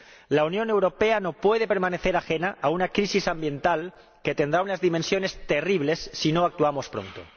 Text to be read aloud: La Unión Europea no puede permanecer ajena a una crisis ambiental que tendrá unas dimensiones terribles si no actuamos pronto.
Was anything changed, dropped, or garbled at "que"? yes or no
no